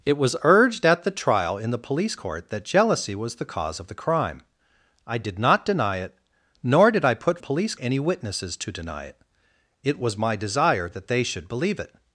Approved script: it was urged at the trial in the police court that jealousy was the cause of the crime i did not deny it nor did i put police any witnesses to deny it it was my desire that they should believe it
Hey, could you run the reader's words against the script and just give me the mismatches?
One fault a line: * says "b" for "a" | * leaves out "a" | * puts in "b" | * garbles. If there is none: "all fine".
all fine